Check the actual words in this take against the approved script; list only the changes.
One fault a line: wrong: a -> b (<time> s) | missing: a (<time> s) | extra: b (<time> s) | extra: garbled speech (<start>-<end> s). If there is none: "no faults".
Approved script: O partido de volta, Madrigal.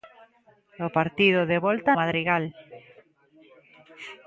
no faults